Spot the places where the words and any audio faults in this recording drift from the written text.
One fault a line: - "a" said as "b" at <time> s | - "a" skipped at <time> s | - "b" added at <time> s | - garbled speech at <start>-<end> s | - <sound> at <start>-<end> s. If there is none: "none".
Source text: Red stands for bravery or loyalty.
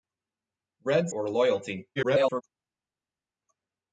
- "stands for bravery" skipped at 1.1 s
- garbled speech at 2.0-2.4 s